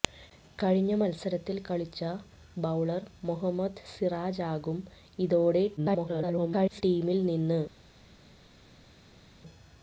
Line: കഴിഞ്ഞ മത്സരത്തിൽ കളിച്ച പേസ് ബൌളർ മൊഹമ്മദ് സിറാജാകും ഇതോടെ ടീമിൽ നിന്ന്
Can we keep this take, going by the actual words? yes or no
no